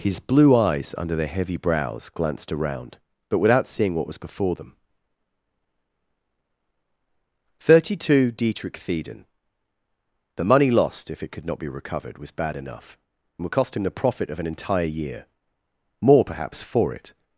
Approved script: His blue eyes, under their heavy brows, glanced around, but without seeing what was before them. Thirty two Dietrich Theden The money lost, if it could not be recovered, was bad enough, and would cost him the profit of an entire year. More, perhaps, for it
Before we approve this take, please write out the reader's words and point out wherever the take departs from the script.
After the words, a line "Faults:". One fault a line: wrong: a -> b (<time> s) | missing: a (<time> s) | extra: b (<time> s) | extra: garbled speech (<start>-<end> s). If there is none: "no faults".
His blue eyes, under their heavy brows, glanced around, but without seeing what was before them. Thirty two Dietrich Theden The money lost, if it could not be recovered, was bad enough, and would cost him the profit of an entire year. More, perhaps, for it
Faults:
no faults